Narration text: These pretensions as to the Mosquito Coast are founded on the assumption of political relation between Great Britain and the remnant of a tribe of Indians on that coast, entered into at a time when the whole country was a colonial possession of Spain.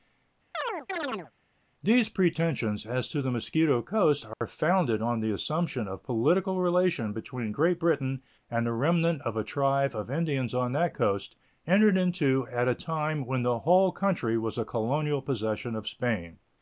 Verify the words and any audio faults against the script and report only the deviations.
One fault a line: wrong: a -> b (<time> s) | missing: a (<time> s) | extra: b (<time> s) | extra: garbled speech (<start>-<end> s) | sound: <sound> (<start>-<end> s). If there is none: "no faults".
sound: chirp (0.5-1.3 s)
sound: dropout (4.3-4.4 s)